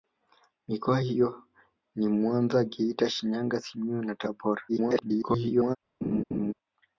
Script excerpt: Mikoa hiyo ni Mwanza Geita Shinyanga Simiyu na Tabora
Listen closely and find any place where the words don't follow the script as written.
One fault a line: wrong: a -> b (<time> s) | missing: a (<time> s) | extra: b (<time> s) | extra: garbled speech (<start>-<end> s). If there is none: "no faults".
extra: garbled speech (4.7-5.8 s)